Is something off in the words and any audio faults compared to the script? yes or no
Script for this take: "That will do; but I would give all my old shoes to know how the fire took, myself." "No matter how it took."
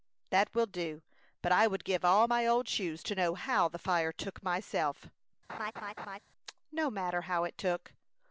yes